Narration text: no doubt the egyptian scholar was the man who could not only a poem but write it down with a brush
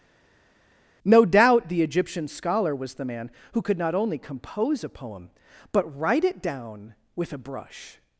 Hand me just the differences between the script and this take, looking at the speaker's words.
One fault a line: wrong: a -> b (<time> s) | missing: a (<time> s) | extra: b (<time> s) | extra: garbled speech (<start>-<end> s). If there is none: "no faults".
extra: compose (4.2 s)